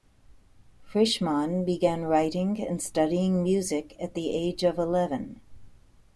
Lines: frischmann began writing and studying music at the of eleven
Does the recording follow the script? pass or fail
fail